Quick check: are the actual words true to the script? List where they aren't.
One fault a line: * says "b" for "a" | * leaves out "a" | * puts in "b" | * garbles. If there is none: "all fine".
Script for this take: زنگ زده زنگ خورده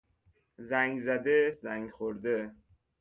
all fine